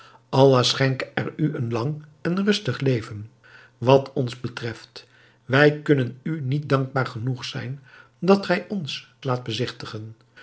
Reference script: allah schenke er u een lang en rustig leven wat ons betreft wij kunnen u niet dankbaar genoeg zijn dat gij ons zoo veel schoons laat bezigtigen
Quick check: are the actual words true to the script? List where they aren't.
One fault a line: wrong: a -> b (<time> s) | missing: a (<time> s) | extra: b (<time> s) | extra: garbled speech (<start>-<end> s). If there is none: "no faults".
missing: zoo veel schoons (9.1 s)